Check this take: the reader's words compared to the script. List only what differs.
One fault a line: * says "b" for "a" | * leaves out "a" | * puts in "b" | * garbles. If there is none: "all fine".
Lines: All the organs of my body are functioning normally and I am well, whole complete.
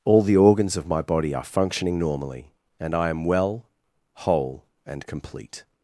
* puts in "and"